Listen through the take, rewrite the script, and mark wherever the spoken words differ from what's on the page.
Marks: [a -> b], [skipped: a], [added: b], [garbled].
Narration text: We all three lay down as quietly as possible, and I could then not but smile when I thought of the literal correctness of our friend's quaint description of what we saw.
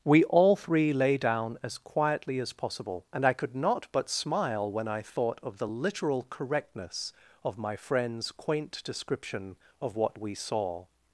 We all three lay down as quietly as possible, and I could [skipped: then] not but smile when I thought of the literal correctness of [our -> my] friend's quaint description of what we saw.